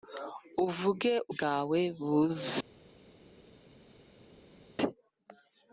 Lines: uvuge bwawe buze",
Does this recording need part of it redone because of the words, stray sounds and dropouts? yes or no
no